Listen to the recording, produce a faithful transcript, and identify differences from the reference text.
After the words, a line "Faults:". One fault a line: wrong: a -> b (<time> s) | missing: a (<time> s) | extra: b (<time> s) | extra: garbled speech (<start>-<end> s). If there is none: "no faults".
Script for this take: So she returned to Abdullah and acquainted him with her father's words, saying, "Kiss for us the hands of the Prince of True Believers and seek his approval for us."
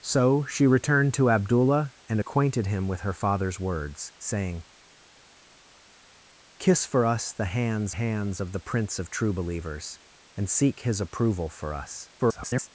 So she returned to Abdullah and acquainted him with her father's words, saying, "Kiss for us the hands hands of the Prince of True Believers and seek his approval for us." [garbled]
Faults:
extra: hands (7.9 s)
extra: garbled speech (12.2-12.7 s)